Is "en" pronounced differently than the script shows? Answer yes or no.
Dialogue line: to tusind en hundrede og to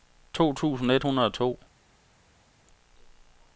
yes